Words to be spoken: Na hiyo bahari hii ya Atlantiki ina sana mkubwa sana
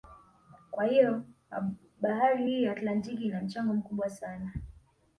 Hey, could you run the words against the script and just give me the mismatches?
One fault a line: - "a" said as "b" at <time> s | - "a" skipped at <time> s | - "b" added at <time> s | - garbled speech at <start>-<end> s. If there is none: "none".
- "Na" said as "Kwa" at 0.7 s
- "sana" said as "mchango" at 3.4 s